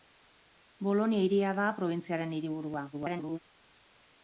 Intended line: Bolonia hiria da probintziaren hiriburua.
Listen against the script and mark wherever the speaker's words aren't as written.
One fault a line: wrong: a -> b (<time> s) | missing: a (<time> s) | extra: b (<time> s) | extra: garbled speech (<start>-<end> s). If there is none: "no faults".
extra: garbled speech (2.9-3.4 s)